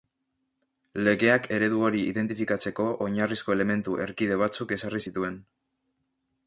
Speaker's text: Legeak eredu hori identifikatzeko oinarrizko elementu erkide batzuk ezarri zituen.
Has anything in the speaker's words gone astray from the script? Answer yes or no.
no